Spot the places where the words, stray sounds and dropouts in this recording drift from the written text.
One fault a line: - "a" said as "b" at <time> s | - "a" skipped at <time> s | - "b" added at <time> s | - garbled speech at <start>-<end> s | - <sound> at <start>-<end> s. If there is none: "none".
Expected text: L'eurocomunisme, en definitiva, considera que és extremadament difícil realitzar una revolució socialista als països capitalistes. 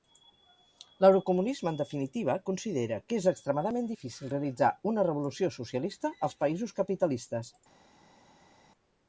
none